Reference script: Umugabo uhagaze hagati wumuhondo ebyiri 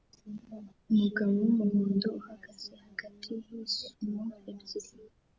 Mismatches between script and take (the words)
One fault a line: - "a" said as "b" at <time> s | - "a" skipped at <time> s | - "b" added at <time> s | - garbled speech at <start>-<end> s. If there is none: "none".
- "wumuhondo" added at 1.4 s
- "wumuhondo" said as "yisumo" at 3.5 s